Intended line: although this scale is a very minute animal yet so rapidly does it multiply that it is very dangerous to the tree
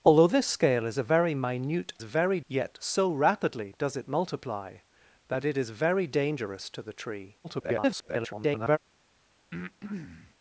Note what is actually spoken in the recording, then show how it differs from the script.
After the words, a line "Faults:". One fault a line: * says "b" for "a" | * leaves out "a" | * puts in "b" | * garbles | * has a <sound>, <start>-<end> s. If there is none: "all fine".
although this scale is a very minute very yet so rapidly does it multiply that it is very dangerous to the tree [garbled]
Faults:
* says "very" for "animal"
* garbles
* has a breath, 9.5-10.3 s